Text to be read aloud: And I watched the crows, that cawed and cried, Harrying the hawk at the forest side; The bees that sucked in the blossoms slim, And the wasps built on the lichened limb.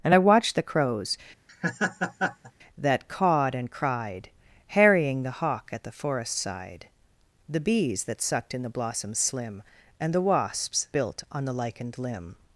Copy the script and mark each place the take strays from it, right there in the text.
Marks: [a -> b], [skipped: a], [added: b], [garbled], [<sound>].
And I watched the crows, [laugh] that cawed and cried, Harrying the hawk at the forest side; The bees that sucked in the blossoms slim, And the wasps built on the lichened limb.